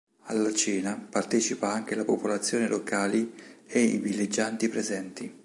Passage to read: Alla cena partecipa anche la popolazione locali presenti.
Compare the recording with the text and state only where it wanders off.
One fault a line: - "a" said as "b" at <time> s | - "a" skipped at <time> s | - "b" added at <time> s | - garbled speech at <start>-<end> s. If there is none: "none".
- "e i villeggianti" added at 3.7 s